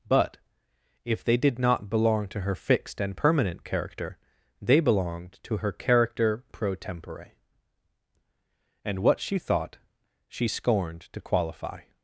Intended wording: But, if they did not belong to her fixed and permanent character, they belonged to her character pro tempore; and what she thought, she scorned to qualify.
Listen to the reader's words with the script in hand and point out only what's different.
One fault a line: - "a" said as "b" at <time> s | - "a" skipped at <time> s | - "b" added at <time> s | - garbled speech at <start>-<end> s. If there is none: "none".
none